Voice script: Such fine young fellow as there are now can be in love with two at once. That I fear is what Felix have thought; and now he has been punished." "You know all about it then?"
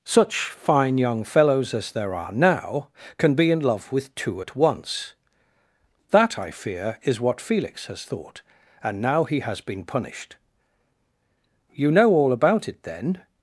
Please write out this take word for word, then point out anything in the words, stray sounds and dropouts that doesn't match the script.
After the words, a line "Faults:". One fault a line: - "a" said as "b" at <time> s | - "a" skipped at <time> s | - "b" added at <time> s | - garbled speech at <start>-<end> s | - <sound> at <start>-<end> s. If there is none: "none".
Such fine young fellows as there are now can be in love with two at once. That I fear is what Felix has thought; and now he has been punished." "You know all about it then?"
Faults:
- "fellow" said as "fellows" at 1.2 s
- "have" said as "has" at 7.9 s